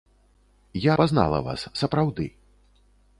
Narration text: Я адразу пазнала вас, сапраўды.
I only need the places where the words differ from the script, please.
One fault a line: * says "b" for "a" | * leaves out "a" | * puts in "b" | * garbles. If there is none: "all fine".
* leaves out "адразу"